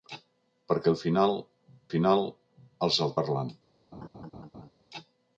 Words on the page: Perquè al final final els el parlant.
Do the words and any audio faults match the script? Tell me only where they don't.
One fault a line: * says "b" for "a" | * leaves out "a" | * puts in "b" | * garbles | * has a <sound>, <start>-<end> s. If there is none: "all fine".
* has a laugh, 3.9-4.7 s